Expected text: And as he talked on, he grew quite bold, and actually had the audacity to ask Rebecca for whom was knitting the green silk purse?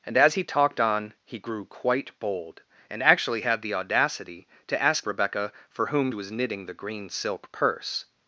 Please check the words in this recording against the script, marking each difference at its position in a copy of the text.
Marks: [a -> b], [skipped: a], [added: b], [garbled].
And as he talked on, he grew quite bold, and actually had the audacity to ask Rebecca for whom was knitting the green silk purse?